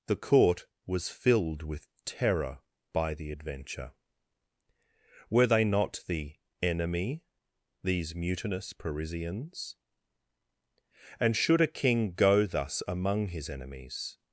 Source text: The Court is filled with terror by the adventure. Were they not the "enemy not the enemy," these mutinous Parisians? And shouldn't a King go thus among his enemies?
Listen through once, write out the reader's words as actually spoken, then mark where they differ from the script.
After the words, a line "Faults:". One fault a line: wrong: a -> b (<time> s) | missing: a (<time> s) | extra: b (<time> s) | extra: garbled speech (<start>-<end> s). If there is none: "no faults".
The Court was filled with terror by the adventure. Were they not the "enemy," these mutinous Parisians? And should a King go thus among his enemies?
Faults:
wrong: is -> was (0.8 s)
missing: not the enemy (7.3 s)
wrong: shouldn't -> should (11.4 s)